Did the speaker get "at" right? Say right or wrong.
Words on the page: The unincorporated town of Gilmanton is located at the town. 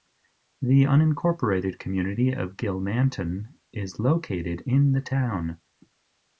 wrong